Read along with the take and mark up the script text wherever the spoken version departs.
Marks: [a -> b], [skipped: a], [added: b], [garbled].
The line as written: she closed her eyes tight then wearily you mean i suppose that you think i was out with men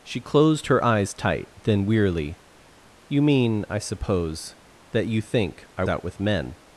she closed her eyes tight then wearily you mean i suppose that you think i [skipped: was] out with men